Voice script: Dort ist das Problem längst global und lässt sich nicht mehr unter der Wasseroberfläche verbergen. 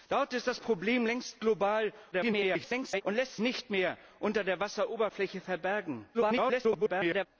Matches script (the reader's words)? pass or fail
fail